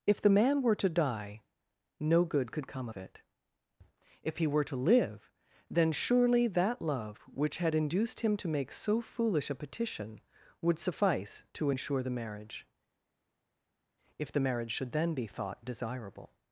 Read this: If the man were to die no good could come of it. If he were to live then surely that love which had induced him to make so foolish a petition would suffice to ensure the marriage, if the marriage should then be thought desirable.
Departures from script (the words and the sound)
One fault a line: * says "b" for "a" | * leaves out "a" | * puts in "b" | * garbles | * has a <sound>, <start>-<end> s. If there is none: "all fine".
all fine